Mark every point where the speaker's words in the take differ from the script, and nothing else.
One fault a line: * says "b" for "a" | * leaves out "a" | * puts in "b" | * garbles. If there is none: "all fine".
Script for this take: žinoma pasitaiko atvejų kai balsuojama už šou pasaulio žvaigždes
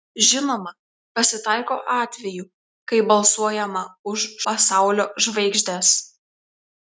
* leaves out "šou"